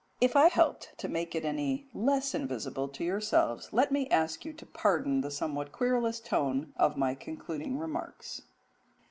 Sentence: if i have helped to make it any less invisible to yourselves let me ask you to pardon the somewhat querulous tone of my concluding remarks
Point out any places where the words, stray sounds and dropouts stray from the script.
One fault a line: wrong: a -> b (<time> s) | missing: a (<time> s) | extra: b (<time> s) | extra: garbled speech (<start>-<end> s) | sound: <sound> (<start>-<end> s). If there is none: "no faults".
missing: have (0.5 s)